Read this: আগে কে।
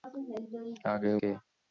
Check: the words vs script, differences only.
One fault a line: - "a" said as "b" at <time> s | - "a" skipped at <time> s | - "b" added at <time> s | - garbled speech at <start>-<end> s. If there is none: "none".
none